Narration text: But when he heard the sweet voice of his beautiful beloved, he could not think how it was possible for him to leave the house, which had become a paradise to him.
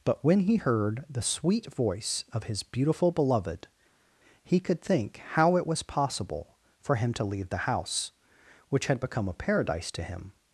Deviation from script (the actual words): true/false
true